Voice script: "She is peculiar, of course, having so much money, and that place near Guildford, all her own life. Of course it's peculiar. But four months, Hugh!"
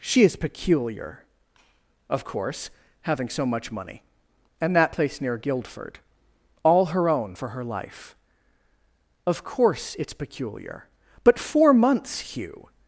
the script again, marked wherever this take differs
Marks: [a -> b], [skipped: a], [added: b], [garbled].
"She is peculiar, of course, having so much money, and that place near Guildford, all her own [added: for her] life. Of course it's peculiar. But four months, Hugh!"